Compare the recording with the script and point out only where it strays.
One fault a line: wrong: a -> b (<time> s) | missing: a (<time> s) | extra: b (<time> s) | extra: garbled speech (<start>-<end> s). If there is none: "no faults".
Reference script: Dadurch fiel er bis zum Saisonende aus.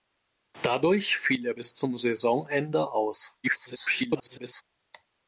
extra: garbled speech (3.4-4.6 s)